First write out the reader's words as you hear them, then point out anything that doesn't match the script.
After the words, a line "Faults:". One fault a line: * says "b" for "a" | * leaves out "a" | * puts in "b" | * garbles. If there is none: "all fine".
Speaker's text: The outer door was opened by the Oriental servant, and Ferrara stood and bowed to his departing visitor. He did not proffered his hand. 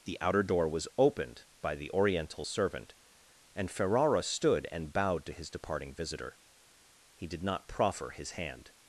The outer door was opened by the Oriental servant, and Ferrara stood and bowed to his departing visitor. He did not proffer his hand.
Faults:
* says "proffer" for "proffered"